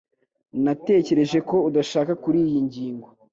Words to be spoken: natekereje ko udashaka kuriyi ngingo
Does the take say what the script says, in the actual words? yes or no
yes